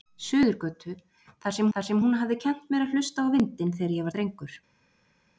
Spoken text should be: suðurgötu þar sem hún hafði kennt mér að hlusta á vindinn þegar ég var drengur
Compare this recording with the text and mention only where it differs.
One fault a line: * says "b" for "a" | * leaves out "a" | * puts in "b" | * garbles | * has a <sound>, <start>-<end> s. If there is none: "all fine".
* puts in "þar sem"
* leaves out "var"